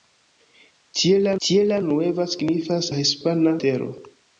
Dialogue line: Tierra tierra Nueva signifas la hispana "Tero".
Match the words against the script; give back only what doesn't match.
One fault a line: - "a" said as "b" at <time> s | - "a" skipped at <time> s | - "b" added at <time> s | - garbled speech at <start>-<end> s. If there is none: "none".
none